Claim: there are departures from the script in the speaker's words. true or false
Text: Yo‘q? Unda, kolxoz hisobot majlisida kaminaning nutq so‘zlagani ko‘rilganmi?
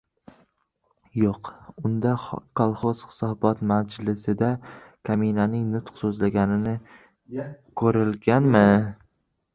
false